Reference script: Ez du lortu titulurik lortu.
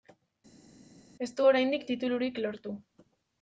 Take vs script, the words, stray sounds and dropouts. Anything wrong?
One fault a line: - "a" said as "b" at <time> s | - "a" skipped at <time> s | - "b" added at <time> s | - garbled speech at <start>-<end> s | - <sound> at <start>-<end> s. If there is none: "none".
- "lortu" said as "oraindik" at 1.5 s